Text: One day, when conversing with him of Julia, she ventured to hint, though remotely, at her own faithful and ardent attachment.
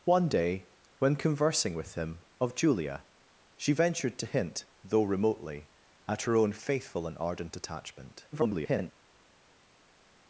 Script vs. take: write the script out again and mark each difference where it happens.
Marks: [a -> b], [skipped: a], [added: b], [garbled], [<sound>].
One day, when conversing with him of Julia, she ventured to hint, though remotely, at her own faithful and ardent attachment. [garbled]